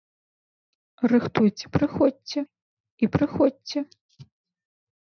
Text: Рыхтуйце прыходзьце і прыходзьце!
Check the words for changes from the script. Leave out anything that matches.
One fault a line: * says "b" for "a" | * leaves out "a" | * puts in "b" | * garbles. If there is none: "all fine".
all fine